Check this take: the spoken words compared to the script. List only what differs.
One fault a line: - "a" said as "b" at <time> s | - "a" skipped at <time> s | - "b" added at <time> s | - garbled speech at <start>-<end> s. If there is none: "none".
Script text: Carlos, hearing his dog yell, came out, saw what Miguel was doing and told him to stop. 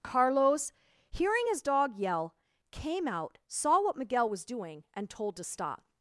- "him" skipped at 5.3 s